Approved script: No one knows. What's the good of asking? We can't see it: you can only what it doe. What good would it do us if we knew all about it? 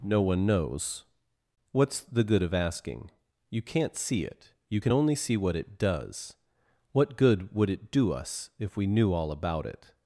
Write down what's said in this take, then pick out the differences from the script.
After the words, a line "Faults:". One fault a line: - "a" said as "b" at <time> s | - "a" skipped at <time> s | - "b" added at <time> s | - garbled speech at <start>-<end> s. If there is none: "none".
No one knows. What's the good of asking? You can't see it: you can only see what it does. What good would it do us if we knew all about it?
Faults:
- "We" said as "You" at 3.5 s
- "see" added at 5.1 s
- "doe" said as "does" at 5.8 s